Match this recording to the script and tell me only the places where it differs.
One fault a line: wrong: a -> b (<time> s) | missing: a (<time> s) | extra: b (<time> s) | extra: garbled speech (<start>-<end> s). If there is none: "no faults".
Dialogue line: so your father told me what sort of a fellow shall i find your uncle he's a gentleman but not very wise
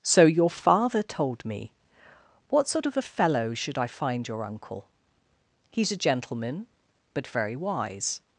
wrong: shall -> should (3.5 s)
missing: not (7.3 s)